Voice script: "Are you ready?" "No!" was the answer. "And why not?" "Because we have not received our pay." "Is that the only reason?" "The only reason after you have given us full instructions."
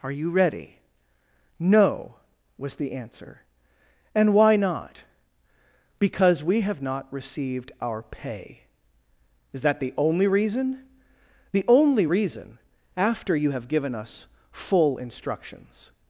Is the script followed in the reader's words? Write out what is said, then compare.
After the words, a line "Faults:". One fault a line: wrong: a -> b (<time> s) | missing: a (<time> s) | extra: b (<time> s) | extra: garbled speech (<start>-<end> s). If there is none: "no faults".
"Are you ready?" "No!" was the answer. "And why not?" "Because we have not received our pay." "Is that the only reason?" "The only reason after you have given us full instructions."
Faults:
no faults